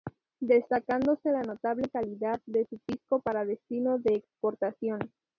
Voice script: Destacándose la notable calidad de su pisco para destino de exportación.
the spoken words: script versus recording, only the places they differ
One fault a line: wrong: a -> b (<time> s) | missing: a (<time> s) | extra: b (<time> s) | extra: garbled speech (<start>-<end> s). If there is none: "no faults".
no faults